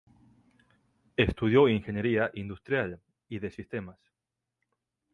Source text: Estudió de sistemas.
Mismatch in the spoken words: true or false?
true